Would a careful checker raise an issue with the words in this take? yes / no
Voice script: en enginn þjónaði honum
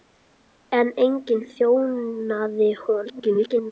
yes